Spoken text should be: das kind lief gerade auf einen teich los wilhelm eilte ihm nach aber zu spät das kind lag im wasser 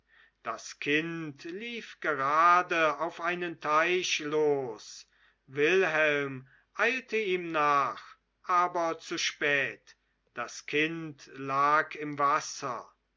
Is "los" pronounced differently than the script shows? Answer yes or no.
no